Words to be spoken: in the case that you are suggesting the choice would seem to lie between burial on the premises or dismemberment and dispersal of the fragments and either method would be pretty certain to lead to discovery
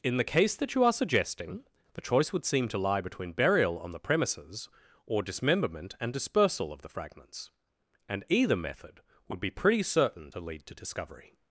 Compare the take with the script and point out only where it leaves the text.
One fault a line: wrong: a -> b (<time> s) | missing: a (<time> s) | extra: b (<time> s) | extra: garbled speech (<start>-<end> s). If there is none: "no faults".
no faults